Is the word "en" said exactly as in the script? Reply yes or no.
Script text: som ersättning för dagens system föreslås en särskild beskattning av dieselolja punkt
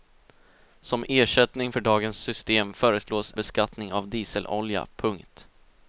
no